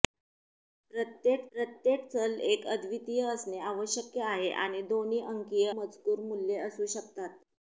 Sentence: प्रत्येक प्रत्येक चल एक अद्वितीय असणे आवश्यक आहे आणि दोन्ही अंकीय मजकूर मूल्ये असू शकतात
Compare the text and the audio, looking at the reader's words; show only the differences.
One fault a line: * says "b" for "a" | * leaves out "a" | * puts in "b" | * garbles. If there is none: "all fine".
all fine